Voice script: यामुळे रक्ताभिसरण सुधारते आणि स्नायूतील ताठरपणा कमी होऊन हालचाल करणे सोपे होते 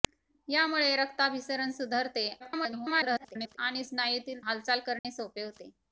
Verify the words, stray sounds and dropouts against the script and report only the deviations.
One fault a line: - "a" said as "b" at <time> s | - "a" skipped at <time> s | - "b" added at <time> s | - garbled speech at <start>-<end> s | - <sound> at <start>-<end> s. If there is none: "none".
- garbled speech at 2.4-3.6 s
- "ताठरपणा कमी होऊन" skipped at 4.4 s
- dropout at 5.0-5.0 s